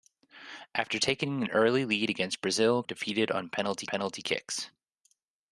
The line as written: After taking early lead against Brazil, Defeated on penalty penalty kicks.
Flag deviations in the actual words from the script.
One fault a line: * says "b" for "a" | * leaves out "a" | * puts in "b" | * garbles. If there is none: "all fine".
all fine